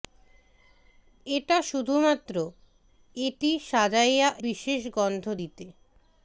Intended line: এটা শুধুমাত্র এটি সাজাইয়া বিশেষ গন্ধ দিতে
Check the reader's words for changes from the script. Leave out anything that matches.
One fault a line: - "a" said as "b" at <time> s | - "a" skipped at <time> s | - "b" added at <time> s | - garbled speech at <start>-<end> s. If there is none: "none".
none